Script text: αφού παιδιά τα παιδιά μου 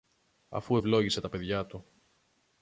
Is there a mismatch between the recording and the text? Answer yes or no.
yes